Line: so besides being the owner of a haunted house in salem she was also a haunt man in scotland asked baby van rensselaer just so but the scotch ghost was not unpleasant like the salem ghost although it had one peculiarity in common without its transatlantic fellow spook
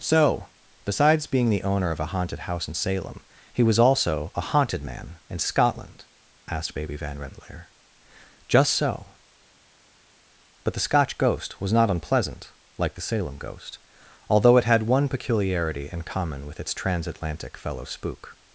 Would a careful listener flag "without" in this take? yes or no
yes